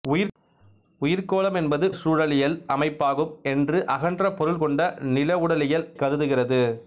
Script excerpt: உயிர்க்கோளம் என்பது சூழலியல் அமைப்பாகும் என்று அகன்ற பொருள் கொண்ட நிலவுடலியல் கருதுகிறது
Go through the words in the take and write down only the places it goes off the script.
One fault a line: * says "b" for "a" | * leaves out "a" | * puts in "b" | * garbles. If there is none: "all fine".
all fine